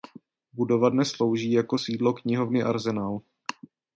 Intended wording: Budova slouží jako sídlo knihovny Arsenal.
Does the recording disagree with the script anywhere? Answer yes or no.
yes